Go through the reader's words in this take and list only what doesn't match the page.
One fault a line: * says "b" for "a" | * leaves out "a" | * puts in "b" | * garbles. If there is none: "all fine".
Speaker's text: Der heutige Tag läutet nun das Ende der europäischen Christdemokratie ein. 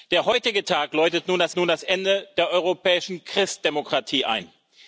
* puts in "nun das"